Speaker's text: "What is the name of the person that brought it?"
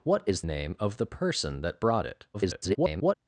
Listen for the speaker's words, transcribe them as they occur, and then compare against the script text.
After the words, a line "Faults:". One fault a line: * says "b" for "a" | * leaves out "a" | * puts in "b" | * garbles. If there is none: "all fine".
"What is name of the person that brought it?" [garbled]
Faults:
* leaves out "the"
* garbles